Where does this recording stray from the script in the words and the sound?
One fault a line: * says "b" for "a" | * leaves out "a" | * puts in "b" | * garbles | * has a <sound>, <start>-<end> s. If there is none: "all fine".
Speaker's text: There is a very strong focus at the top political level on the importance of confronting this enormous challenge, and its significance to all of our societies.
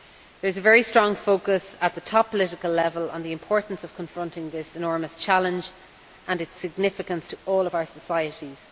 all fine